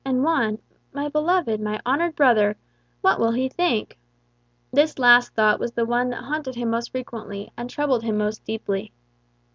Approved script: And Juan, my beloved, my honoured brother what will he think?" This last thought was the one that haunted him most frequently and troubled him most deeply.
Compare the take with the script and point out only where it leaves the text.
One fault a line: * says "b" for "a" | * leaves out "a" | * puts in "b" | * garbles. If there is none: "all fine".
all fine